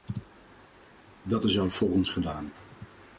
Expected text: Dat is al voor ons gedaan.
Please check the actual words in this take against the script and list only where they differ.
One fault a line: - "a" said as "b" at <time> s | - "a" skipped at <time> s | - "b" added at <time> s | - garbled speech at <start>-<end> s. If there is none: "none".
none